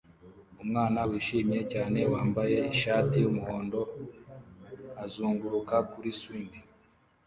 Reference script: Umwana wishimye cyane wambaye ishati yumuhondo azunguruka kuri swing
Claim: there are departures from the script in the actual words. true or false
false